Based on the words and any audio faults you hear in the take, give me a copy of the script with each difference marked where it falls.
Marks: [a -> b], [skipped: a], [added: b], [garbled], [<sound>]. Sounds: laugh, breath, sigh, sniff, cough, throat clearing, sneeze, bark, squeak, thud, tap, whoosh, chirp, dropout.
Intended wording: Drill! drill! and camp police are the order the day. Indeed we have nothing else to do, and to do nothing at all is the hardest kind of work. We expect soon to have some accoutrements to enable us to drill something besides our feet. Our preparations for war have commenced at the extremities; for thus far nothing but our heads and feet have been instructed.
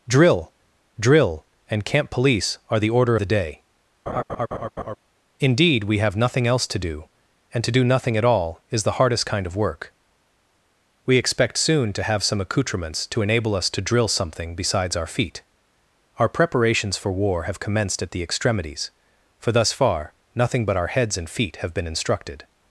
Drill! drill! and camp police are the order the day. [laugh] Indeed we have nothing else to do, and to do nothing at all is the hardest kind of work. We expect soon to have some accoutrements to enable us to drill something besides our feet. Our preparations for war have commenced at the extremities; for thus far nothing but our heads and feet have been instructed.